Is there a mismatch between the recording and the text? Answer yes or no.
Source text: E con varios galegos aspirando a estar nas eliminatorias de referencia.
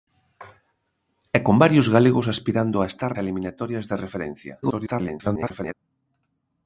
yes